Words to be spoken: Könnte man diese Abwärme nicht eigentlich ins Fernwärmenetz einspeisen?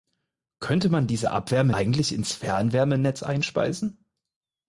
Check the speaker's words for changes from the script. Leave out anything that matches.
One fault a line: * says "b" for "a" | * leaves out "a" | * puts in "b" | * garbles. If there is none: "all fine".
* leaves out "nicht"